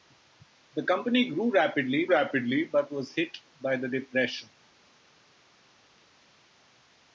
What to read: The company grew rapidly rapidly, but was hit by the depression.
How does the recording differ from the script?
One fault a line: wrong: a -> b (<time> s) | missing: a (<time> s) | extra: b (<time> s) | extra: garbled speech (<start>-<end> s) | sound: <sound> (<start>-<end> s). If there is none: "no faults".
no faults